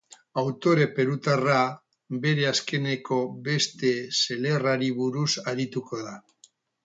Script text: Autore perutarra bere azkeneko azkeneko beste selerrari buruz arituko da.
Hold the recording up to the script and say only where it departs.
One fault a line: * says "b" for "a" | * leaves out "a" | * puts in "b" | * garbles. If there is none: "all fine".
* leaves out "azkeneko"